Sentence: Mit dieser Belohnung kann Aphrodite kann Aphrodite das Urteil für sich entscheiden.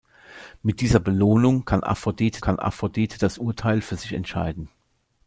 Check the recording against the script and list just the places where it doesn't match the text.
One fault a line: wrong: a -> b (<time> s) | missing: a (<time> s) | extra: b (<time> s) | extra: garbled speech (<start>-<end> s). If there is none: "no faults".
no faults